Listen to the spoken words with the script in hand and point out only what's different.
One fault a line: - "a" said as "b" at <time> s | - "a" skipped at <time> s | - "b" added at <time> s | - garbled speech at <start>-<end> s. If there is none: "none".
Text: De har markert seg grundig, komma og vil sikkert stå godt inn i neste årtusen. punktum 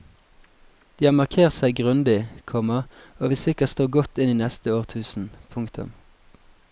none